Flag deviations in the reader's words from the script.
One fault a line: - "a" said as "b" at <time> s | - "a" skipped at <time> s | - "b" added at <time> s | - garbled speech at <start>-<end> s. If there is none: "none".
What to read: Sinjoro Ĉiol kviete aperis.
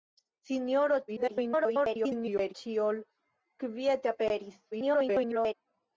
- garbled speech at 1.1-2.5 s
- garbled speech at 4.7-5.5 s